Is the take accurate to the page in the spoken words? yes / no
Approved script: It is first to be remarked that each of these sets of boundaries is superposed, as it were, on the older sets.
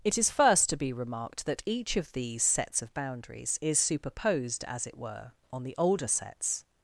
yes